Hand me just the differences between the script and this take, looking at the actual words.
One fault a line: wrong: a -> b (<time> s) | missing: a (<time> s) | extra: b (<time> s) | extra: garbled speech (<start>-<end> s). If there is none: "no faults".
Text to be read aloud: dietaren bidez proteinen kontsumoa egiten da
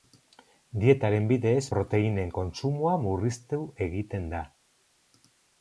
extra: murriztu (3.1 s)